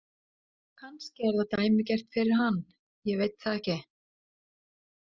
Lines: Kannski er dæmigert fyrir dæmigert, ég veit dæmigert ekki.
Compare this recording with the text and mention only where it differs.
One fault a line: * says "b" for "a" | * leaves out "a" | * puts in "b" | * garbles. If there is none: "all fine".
* puts in "það"
* says "hann" for "dæmigert"
* says "það" for "dæmigert"